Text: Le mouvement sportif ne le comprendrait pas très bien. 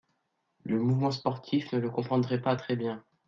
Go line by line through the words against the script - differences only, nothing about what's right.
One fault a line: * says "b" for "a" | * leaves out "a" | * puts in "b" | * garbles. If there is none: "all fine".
all fine